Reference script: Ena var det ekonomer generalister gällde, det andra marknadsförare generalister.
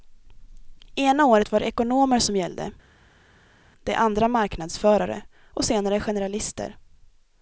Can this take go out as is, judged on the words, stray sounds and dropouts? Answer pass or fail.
fail